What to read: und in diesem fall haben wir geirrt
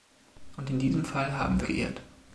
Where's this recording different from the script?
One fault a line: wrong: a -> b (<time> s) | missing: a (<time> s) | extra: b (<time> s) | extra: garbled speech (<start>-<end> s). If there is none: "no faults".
no faults